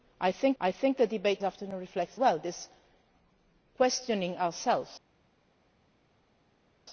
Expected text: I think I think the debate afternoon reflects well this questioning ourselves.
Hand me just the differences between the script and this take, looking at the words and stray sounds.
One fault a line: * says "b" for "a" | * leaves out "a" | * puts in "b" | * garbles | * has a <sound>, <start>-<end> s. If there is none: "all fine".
all fine